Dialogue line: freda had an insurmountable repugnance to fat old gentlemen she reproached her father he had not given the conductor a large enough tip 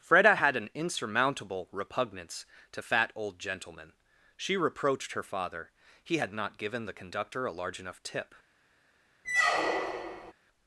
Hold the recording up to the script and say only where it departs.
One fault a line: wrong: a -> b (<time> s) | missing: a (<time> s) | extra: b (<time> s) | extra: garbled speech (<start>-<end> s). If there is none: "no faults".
no faults